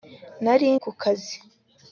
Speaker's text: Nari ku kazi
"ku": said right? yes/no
yes